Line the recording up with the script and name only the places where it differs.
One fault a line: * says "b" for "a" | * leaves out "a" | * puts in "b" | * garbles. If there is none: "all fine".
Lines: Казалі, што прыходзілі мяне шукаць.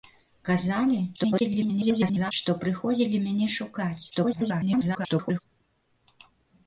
* garbles
* garbles